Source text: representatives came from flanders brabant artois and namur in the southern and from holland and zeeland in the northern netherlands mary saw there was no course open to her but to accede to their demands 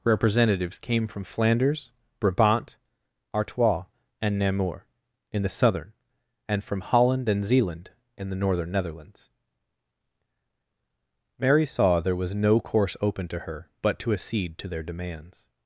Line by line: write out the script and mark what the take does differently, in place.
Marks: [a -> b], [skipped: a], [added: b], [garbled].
representatives came from flanders brabant artois and namur in the southern and from holland and zeeland in the northern netherlands mary saw there was no course open to her but to accede to their demands